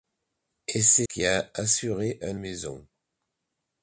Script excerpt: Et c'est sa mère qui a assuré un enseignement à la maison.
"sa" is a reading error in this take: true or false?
true